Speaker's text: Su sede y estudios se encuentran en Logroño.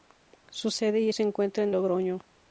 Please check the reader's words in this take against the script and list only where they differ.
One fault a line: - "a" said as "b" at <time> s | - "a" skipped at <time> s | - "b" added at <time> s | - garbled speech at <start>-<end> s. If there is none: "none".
- "estudios" skipped at 1.1 s
- "en" skipped at 1.7 s